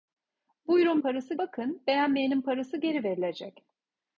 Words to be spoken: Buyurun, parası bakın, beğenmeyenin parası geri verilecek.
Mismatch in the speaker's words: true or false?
false